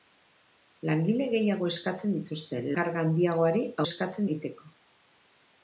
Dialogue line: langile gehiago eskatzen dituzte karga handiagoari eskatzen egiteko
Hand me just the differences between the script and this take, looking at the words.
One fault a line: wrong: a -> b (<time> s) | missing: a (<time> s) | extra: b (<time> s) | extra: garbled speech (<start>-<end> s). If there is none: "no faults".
no faults